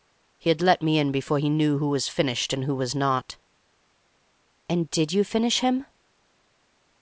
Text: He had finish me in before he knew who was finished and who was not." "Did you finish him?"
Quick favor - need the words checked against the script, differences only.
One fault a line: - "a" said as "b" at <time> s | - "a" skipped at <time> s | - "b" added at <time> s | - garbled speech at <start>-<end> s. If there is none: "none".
- "finish" said as "let" at 0.6 s
- "And" added at 4.7 s